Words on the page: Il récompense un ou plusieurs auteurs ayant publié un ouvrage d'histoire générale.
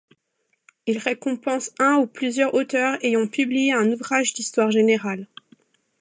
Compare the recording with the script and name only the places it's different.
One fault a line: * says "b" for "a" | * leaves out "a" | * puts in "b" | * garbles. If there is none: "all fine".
all fine